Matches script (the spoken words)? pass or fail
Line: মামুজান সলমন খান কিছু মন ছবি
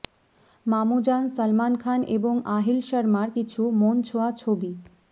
fail